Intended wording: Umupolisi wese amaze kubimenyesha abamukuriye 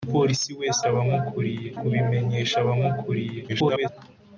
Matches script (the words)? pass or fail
fail